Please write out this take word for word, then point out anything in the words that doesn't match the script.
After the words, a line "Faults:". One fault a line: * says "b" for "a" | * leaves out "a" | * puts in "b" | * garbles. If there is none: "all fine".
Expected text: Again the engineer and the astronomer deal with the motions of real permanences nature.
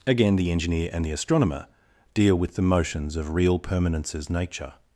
Again the engineer and the astronomer deal with the motions of real permanences nature.
Faults:
all fine